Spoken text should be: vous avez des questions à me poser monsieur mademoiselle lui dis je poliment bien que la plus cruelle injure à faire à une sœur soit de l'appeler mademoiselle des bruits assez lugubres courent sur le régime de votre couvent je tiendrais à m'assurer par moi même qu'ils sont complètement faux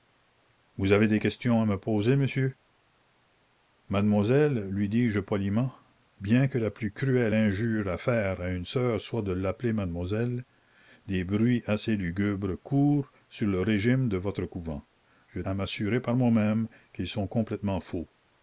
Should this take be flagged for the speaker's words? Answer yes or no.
yes